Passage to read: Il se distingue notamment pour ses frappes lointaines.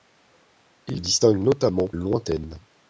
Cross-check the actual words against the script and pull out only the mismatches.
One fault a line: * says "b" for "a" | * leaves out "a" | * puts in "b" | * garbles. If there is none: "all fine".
* leaves out "se"
* leaves out "pour ses frappes"